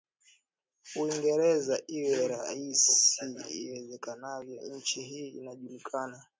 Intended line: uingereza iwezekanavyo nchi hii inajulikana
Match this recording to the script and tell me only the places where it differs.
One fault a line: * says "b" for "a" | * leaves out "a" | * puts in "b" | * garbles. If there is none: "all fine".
* puts in "iwe rahisi"